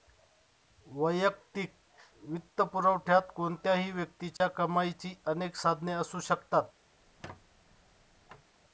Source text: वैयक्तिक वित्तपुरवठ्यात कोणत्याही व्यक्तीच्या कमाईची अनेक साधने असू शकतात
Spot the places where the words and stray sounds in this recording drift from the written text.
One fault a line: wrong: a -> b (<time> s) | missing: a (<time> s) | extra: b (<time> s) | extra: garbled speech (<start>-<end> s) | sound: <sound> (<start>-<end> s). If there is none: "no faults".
sound: dropout (4.4-4.4 s)
sound: squeak (7.0-8.5 s)